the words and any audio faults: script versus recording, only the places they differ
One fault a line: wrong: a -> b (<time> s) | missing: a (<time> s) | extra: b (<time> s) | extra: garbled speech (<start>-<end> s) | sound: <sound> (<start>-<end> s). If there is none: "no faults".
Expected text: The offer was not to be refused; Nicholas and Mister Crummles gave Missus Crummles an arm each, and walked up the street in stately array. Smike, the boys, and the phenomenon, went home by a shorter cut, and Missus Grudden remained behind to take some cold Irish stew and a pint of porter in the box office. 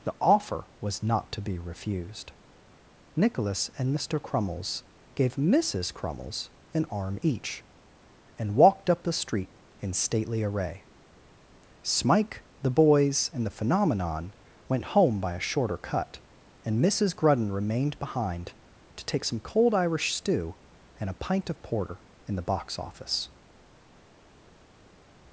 no faults